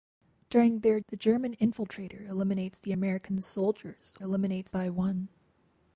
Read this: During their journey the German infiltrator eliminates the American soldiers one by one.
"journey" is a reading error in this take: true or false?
true